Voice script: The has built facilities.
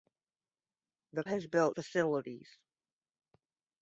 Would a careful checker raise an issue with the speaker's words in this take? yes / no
no